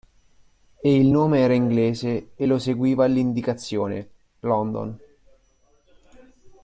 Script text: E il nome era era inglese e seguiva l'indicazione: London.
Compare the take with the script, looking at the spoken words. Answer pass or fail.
fail